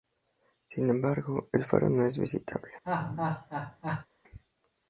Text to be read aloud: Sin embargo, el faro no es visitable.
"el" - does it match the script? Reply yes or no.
yes